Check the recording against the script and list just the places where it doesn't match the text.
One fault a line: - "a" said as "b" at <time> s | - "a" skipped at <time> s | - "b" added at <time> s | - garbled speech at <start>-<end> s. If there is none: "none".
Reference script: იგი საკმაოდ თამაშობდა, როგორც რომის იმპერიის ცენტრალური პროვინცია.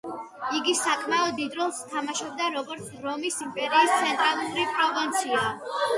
- "დიდ როლს" added at 1.4 s